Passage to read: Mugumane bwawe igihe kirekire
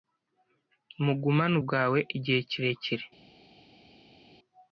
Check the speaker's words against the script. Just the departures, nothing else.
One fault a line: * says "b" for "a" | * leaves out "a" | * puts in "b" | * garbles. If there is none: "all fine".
all fine